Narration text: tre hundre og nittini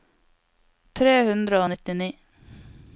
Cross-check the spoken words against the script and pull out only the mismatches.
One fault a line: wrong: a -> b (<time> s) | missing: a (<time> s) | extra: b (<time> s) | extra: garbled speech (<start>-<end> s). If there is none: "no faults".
no faults